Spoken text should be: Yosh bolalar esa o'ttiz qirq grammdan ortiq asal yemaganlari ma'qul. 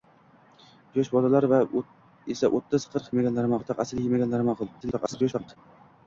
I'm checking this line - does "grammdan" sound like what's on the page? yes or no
no